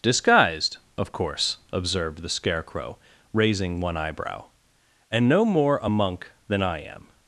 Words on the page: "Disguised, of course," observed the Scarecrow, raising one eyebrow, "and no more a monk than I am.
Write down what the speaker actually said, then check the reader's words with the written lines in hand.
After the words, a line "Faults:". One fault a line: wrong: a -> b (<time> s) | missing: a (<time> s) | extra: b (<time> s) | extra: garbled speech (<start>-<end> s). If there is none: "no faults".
"Disguised, of course," observed the Scarecrow, raising one eyebrow, "and no more a monk than I am.
Faults:
no faults